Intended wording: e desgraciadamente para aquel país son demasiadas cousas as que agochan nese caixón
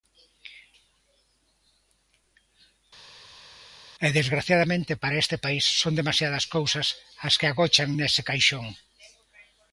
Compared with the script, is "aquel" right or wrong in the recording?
wrong